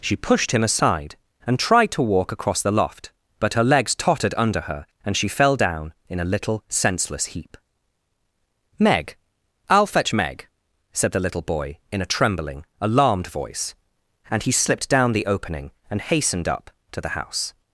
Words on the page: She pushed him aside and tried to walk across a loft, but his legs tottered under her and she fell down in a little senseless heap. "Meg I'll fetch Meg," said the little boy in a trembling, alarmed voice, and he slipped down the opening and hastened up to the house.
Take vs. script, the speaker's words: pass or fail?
fail